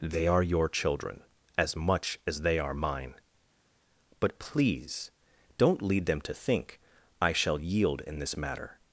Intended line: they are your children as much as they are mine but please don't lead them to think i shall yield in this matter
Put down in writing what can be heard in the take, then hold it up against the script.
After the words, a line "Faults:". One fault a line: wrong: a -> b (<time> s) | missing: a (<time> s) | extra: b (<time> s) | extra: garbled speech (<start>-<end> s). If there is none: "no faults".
they are your children as much as they are mine but please don't lead them to think i shall yield in this matter
Faults:
no faults